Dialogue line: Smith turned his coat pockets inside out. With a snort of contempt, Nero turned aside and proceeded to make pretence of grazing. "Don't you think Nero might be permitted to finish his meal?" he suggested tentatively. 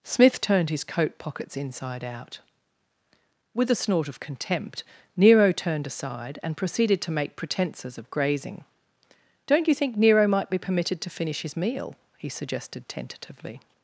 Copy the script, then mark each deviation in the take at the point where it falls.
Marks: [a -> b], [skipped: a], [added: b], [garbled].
Smith turned his coat pockets inside out. With a snort of contempt, Nero turned aside and proceeded to make [pretence -> pretences] of grazing. "Don't you think Nero might be permitted to finish his meal?" he suggested tentatively.